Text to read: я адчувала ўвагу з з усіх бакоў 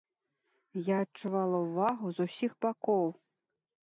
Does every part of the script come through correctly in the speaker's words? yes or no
no